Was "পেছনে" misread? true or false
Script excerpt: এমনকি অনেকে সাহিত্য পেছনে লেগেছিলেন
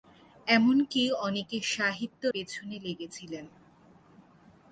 false